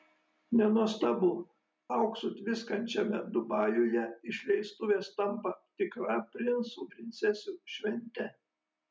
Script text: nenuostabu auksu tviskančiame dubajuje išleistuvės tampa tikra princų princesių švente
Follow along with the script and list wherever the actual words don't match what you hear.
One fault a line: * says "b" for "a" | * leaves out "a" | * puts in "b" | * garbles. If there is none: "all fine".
all fine